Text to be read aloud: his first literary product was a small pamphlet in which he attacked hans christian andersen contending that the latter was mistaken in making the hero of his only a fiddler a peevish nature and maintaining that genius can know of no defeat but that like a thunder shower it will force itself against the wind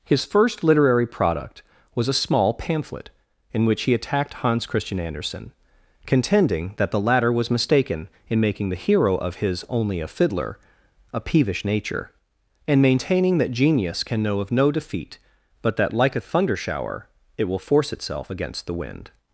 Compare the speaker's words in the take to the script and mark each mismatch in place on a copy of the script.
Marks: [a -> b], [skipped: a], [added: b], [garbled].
his first literary product was a small pamphlet in which he attacked hans christian andersen contending that the latter was mistaken in making the hero of his only a fiddler a peevish nature and maintaining that genius can know of no defeat but that like a thunder shower it will force itself against the wind